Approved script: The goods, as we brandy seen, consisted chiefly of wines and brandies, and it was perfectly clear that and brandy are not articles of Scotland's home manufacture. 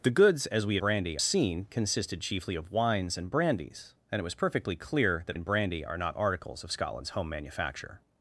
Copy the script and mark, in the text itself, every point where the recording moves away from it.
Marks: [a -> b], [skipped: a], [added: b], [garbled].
The goods, as we brandy seen, consisted chiefly of wines and brandies, and it was perfectly clear that and brandy are not articles of Scotland's home manufacture.